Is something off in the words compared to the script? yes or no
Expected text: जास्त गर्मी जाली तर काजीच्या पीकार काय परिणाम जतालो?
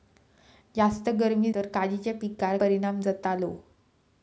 yes